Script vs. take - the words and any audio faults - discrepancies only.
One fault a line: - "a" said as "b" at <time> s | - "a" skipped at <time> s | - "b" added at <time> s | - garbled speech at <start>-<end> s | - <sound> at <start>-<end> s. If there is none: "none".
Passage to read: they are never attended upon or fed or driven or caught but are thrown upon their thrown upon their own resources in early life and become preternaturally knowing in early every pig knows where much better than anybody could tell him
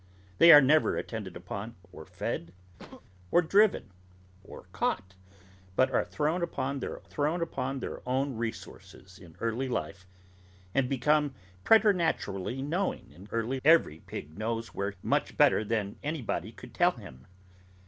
- sneeze at 2.8-3.0 s